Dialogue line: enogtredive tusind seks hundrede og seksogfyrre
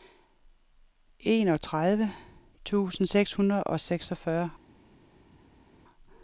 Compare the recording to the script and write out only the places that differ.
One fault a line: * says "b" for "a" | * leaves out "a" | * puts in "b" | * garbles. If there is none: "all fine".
all fine